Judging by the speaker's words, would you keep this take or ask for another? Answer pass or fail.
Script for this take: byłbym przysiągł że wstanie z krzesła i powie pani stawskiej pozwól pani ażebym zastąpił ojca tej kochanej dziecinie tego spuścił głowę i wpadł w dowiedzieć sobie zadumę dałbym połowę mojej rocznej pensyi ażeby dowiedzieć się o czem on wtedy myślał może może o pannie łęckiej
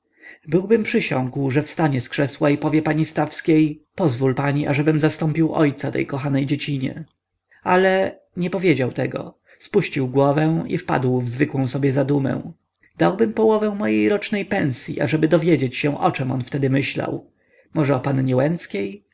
fail